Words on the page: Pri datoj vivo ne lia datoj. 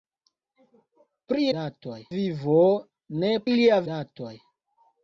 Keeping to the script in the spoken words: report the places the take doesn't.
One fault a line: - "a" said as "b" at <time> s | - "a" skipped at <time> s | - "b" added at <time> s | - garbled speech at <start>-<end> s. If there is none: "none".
none